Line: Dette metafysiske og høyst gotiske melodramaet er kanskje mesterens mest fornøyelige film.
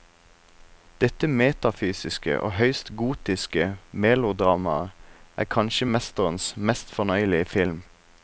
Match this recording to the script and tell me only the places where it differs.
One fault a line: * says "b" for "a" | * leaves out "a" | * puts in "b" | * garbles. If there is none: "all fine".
all fine